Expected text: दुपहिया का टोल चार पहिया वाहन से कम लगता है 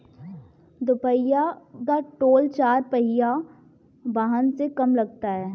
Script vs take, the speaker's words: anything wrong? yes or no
no